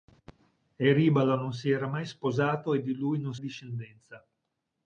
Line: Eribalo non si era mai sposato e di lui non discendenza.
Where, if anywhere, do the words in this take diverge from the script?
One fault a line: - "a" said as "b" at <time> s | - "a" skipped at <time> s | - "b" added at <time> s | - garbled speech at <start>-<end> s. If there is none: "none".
none